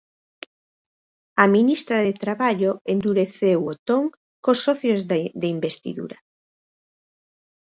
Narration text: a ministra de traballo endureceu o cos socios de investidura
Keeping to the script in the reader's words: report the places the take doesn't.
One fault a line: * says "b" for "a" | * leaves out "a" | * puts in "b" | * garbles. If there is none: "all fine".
* puts in "ton"